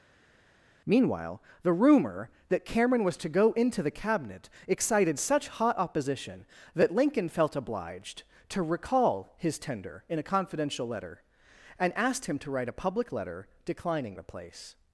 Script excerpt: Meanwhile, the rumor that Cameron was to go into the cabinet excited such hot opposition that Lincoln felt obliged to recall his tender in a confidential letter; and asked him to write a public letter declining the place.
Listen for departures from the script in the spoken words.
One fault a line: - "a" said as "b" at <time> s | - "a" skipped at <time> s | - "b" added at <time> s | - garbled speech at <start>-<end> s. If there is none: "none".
none